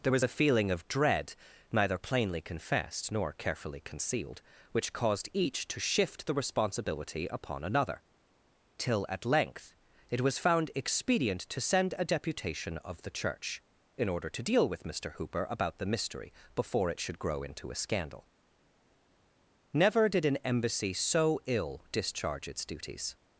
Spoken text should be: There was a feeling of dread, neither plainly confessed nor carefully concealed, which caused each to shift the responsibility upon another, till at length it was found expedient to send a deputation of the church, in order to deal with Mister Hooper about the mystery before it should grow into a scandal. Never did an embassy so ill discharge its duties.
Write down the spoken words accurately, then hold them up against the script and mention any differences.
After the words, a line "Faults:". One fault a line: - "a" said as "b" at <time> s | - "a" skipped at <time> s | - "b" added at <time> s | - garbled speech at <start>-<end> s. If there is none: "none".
There was a feeling of dread, neither plainly confessed nor carefully concealed, which caused each to shift the responsibility upon another, till at length it was found expedient to send a deputation of the church, in order to deal with Mister Hooper about the mystery before it should grow into a scandal. Never did an embassy so ill discharge its duties.
Faults:
none